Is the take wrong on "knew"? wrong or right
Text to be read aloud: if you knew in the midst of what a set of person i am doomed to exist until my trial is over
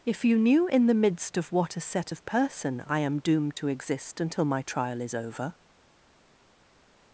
right